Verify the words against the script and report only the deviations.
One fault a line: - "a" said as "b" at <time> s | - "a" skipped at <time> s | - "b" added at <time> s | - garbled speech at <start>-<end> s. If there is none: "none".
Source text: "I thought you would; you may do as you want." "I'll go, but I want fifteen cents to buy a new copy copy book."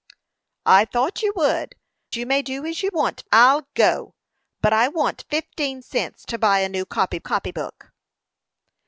none